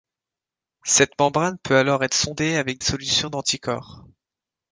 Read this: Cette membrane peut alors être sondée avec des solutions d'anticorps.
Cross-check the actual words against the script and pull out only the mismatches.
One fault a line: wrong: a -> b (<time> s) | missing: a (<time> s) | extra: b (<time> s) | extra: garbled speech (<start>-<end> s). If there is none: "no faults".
missing: des (2.8 s)